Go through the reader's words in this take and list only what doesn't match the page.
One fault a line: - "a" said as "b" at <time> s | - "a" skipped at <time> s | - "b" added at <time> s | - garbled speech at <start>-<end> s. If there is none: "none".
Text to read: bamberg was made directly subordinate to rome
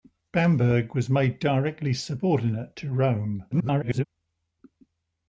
- garbled speech at 3.5-4.1 s